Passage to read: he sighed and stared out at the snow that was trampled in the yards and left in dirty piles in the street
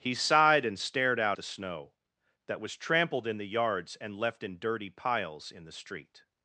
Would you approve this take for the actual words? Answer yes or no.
no